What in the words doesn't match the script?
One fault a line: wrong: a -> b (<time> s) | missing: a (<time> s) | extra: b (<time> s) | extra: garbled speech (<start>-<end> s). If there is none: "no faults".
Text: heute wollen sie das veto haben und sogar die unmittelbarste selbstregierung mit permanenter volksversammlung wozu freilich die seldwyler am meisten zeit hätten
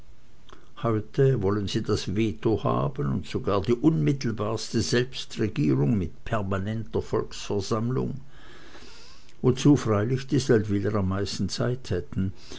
no faults